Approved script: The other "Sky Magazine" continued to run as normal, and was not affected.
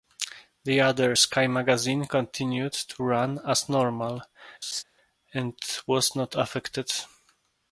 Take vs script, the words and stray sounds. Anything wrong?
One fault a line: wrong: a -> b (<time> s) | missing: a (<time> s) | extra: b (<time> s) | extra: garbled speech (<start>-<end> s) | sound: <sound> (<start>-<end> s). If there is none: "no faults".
sound: laugh (4.6-4.8 s)